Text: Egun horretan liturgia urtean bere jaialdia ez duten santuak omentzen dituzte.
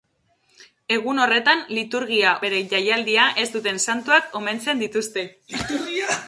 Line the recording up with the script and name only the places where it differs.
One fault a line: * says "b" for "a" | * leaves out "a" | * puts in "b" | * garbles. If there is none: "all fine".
* leaves out "urtean"